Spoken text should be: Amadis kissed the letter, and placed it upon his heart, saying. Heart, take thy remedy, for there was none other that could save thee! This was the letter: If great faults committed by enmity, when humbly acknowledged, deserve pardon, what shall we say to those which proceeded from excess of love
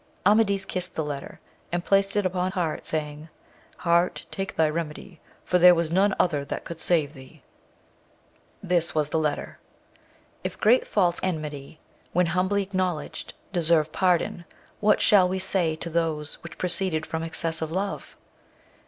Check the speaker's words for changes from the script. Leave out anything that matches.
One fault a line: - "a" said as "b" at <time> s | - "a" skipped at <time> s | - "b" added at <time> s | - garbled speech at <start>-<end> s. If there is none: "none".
- "his" skipped at 2.5 s
- "committed by" skipped at 11.2 s